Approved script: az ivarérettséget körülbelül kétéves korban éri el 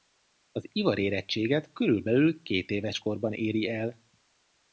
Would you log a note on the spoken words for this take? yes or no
no